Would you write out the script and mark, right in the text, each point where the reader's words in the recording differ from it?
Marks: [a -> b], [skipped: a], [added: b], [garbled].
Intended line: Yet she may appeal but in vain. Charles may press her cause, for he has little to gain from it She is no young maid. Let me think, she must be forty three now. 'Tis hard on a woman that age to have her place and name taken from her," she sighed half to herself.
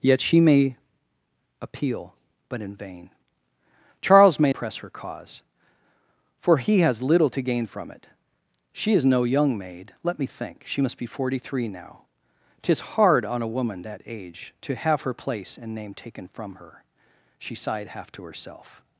Yet she may appeal but in vain. Charles may press her cause, for he has little to gain from it She is no young maid. Let me think, she must be forty three now. 'Tis hard on a woman that age to have her place and name taken from her," she sighed half to herself.